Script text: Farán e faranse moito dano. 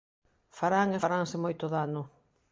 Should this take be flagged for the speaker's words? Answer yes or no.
no